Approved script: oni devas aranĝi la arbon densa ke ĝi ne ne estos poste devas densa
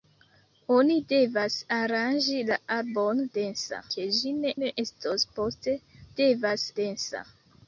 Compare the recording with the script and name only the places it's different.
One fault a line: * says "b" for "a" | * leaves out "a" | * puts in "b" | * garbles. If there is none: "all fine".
all fine